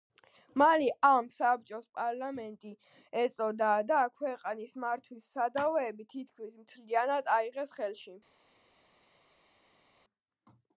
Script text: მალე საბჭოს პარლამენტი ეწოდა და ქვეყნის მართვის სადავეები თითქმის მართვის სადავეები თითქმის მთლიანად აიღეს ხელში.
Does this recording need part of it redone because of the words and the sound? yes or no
yes